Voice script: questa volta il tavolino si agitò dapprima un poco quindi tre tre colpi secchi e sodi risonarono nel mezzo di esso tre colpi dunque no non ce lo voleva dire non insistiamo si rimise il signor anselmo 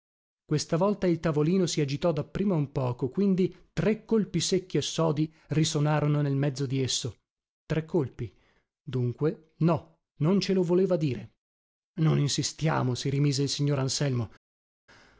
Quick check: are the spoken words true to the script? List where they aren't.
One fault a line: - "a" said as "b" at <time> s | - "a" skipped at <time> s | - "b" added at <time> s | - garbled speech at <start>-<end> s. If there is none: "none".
- "tre" skipped at 4.0 s